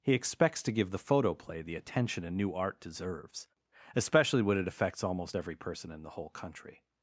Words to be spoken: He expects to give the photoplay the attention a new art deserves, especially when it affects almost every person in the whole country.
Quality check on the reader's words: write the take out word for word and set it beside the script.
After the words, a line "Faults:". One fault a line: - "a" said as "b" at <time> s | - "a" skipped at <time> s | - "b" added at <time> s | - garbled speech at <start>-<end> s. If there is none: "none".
He expects to give the photoplay the attention a new art deserves, especially when it affects almost every person in the whole country.
Faults:
none